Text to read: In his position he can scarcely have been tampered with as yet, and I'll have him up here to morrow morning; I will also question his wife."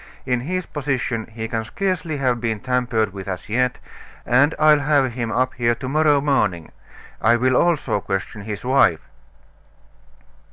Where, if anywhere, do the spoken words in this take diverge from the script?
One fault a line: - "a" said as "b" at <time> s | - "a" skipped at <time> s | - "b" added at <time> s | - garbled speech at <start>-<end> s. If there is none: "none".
none